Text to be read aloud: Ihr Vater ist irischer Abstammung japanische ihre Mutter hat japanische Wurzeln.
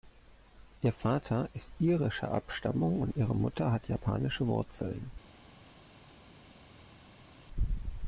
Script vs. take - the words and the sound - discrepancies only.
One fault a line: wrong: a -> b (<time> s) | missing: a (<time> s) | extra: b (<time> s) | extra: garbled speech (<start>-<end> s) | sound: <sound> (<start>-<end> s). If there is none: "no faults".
wrong: japanische -> und (3.0 s)